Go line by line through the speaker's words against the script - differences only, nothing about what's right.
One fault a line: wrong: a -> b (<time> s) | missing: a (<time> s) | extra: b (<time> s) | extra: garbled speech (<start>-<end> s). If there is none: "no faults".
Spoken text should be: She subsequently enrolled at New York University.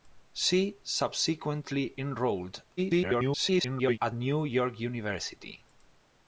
extra: garbled speech (2.8-4.0 s)